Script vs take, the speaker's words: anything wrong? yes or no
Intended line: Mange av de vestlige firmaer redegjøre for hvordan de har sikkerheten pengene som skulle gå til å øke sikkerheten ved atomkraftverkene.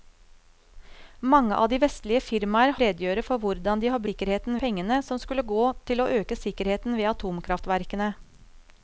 no